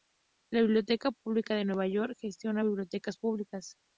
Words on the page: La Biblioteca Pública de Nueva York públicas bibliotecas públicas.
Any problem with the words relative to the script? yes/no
yes